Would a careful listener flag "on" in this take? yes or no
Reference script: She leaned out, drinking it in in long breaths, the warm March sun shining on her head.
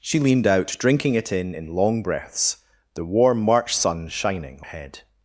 yes